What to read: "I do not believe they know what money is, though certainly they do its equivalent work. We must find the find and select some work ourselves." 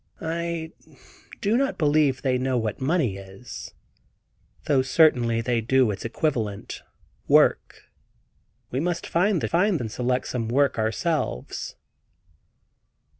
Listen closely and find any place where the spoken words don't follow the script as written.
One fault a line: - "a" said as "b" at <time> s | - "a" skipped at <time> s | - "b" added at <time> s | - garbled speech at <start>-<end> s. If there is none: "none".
none